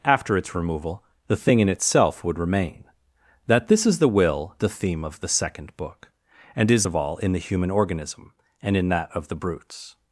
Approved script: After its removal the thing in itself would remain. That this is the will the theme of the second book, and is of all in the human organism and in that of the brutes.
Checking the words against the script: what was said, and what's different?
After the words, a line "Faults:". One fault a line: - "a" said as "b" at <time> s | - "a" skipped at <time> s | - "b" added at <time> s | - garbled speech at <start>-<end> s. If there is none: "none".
After its removal the thing in itself would remain. That this is the will the theme of the second book, and is of all in the human organism and in that of the brutes.
Faults:
none